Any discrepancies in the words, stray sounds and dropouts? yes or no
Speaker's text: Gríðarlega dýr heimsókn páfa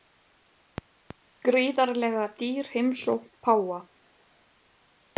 no